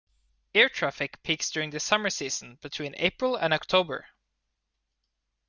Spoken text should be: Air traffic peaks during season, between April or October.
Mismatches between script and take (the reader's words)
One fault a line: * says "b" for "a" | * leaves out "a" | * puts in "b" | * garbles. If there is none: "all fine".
* puts in "the summer"
* says "and" for "or"